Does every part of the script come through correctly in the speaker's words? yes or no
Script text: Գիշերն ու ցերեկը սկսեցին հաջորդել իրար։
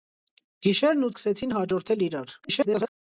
no